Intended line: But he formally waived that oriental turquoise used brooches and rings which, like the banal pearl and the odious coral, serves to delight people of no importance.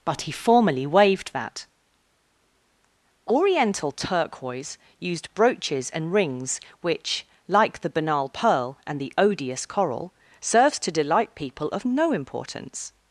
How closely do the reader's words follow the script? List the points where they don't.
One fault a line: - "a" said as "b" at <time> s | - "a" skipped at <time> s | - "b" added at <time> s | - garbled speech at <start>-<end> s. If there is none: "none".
none